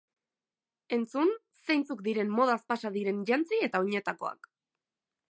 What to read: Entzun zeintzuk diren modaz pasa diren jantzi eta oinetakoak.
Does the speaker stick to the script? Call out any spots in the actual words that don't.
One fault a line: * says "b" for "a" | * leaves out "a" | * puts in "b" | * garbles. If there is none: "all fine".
all fine